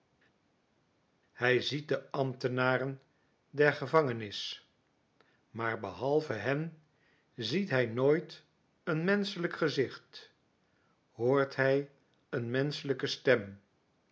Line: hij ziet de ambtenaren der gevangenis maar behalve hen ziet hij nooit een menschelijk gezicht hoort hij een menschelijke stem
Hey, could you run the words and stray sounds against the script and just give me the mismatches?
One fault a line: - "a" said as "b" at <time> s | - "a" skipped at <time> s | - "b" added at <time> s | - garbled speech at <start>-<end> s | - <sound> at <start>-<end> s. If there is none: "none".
none